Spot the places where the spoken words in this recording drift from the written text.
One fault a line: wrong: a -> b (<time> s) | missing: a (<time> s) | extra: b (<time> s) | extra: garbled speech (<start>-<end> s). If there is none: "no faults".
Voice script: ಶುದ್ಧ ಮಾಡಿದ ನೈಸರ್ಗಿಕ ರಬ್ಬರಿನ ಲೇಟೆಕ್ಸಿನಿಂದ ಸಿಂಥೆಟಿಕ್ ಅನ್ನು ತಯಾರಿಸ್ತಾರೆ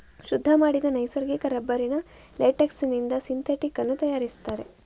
no faults